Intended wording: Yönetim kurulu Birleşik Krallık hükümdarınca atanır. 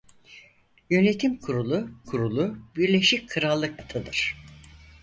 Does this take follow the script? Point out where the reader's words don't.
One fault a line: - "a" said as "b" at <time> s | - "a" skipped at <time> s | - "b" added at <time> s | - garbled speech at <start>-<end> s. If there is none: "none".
- "kurulu" added at 2.0 s
- "hükümdarınca" skipped at 3.8 s